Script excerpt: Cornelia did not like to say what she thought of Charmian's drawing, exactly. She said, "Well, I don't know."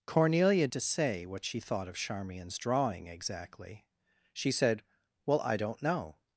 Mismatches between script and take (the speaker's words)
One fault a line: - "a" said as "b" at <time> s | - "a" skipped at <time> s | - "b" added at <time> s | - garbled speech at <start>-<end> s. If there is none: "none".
- "did not like" skipped at 0.7 s